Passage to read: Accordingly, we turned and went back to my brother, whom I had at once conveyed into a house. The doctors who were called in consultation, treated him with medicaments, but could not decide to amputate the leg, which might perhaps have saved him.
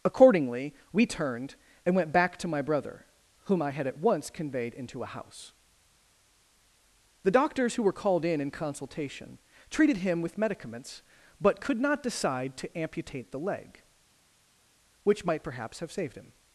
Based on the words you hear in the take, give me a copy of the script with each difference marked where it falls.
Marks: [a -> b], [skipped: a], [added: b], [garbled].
Accordingly, we turned and went back to my brother, whom I had at once conveyed into a house. The doctors who were called in [added: in] consultation, treated him with medicaments, but could not decide to amputate the leg, which might perhaps have saved him.